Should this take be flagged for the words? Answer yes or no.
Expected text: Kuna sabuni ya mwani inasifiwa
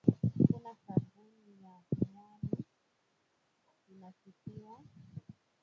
no